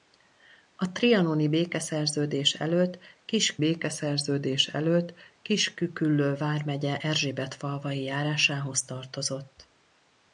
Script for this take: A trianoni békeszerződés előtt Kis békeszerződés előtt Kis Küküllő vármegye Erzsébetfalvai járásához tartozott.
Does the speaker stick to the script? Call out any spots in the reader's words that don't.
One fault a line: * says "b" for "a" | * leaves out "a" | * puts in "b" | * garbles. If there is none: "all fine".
all fine